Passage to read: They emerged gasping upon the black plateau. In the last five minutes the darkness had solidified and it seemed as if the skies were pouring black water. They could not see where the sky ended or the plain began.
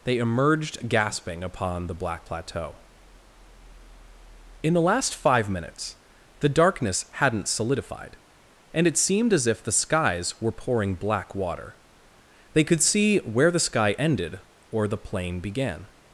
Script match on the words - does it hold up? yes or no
no